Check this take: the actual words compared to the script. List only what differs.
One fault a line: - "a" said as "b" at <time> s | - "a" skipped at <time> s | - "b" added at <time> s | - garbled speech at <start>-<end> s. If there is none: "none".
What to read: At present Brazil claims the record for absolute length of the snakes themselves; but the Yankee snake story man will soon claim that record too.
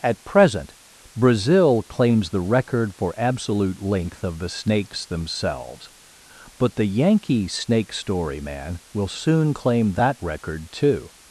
none